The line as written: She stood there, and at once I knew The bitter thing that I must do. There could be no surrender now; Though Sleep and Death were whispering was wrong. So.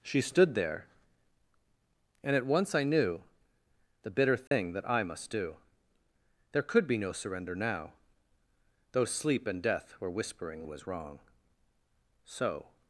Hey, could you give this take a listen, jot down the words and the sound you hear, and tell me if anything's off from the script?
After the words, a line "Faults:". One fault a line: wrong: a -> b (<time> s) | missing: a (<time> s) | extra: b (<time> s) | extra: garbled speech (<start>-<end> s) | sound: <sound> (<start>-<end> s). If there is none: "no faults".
She stood there, and at once I knew The bitter thing that I must do. There could be no surrender now; Though Sleep and Death were whispering was wrong. So.
Faults:
sound: dropout (4.5-4.5 s)